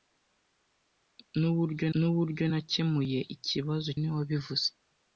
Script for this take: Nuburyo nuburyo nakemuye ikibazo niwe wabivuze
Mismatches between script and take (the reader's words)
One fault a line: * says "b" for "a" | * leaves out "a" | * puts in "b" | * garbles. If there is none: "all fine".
all fine